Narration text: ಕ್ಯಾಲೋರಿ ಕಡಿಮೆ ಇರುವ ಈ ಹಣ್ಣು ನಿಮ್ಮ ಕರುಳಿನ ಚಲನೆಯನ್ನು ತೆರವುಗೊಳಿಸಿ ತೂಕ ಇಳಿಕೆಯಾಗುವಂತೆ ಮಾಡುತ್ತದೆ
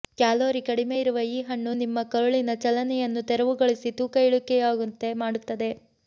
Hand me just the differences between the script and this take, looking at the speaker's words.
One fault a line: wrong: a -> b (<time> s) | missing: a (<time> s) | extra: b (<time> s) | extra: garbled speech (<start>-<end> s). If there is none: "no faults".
no faults